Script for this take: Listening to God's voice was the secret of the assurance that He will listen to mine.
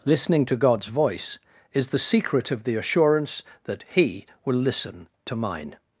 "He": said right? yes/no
yes